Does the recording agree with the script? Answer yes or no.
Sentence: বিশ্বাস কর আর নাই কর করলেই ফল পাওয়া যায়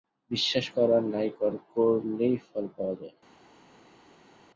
yes